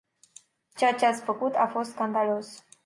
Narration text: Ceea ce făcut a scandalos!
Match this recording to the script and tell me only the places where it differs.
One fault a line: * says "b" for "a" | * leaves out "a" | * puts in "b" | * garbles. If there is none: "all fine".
* puts in "ați"
* puts in "fost"